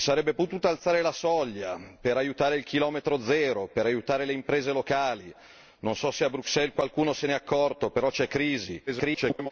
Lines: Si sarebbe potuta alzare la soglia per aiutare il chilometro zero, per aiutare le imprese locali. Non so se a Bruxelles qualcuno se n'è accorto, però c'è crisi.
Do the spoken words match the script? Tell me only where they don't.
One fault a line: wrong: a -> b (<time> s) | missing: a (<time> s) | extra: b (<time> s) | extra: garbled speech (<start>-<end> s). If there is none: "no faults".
extra: garbled speech (8.9-9.5 s)